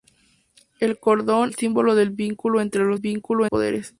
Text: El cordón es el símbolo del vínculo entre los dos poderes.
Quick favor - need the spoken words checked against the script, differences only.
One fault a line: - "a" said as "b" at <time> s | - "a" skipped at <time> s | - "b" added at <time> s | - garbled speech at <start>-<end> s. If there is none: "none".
- "es" skipped at 1.5 s
- "dos" said as "vínculo" at 3.0 s